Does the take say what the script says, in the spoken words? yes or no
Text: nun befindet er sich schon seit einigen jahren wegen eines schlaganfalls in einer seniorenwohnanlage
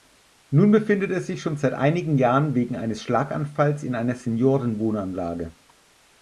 yes